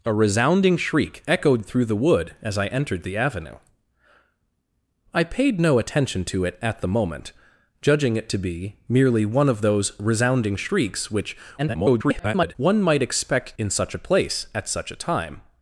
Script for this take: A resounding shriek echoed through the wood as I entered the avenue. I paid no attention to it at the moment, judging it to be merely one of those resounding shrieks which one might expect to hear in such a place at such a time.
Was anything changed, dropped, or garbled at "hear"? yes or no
yes